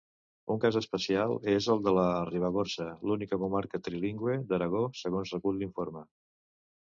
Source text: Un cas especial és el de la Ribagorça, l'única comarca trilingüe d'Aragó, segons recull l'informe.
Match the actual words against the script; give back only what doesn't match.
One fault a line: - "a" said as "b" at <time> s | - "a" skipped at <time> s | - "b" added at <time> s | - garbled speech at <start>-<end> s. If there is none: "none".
none